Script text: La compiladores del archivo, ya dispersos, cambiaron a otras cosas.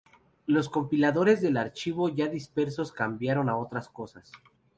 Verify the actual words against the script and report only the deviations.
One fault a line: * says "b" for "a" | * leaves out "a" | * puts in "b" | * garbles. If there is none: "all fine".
* says "Los" for "La"